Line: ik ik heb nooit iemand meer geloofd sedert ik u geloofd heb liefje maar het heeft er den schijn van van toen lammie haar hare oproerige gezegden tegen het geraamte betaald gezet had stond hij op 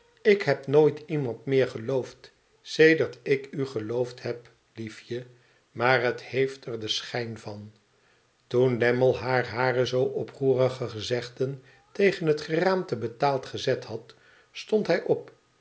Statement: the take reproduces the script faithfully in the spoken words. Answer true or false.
false